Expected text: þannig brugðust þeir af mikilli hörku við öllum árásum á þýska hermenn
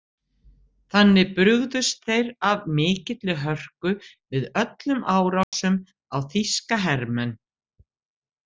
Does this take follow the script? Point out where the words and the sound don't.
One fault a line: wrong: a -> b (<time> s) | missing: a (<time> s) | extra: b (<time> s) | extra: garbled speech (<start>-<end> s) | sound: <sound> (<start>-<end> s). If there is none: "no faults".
sound: dropout (5.4-5.5 s)